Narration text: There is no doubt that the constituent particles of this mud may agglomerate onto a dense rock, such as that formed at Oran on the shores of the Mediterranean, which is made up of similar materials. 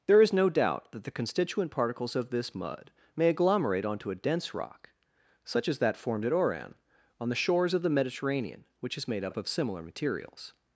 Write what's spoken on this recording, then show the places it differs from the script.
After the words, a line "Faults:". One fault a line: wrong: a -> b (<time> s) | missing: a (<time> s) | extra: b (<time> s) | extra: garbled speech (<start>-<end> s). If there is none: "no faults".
There is no doubt that the constituent particles of this mud may agglomerate onto a dense rock, such as that formed at Oran on the shores of the Mediterranean, which is made up of similar materials.
Faults:
no faults